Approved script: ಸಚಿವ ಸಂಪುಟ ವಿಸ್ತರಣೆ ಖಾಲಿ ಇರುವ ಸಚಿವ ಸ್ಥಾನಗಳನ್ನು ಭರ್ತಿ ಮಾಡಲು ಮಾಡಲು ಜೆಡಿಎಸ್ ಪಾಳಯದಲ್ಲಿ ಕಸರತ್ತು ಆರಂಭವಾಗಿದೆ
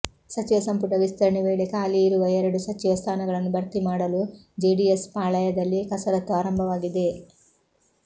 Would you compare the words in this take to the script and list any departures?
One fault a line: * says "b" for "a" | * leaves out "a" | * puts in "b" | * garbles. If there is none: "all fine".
* puts in "ವೇಳೆ"
* puts in "ಎರಡು"
* leaves out "ಮಾಡಲು"